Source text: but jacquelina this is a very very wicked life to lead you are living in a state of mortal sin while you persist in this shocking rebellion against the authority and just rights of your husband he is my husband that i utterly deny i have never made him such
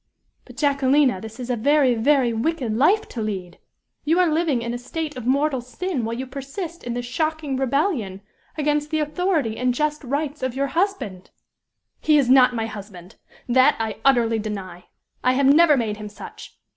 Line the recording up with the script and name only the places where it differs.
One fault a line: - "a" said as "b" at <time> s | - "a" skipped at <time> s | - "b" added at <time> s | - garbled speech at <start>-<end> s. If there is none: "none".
- "not" added at 12.3 s